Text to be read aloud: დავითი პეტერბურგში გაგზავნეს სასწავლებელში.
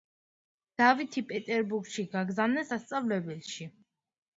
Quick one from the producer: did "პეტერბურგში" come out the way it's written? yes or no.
yes